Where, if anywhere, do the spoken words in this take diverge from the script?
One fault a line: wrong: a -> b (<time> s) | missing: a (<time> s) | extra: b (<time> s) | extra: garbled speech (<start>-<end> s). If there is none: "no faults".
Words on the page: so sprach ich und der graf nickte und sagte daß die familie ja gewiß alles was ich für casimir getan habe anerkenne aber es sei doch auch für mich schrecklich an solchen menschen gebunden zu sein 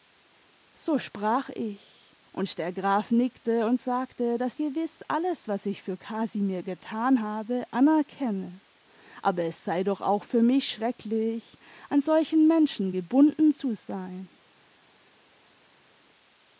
missing: die familie ja (4.6 s)